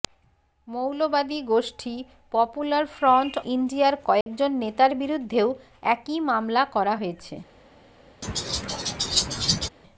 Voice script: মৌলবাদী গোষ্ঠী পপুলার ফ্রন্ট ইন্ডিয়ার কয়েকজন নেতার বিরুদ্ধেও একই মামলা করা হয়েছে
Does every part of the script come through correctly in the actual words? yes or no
yes